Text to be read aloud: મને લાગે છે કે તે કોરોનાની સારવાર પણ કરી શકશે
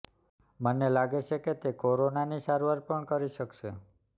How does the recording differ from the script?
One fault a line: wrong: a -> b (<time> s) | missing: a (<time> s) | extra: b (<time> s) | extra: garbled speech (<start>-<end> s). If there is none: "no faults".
no faults